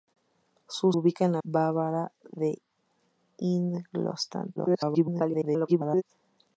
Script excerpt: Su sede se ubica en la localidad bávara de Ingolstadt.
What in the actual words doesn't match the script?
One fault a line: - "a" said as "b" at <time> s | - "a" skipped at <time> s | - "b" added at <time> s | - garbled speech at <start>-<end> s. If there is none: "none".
- "sede se" skipped at 0.9 s
- "localidad" skipped at 1.4 s
- garbled speech at 4.6-6.0 s